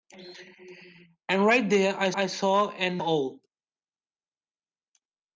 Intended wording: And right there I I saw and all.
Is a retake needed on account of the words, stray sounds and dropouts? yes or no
no